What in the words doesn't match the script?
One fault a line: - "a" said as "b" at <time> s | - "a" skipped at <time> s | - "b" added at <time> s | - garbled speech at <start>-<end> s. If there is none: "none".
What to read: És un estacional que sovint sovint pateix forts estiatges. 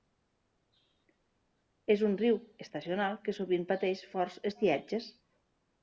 - "riu" added at 2.2 s
- "sovint" skipped at 3.7 s